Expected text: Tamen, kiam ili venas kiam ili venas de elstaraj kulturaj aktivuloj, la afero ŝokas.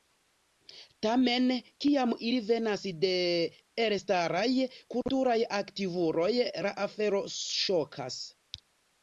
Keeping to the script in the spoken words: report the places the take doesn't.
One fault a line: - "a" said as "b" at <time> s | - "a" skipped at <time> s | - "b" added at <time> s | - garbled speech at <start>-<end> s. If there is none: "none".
- "kiam ili venas" skipped at 2.9 s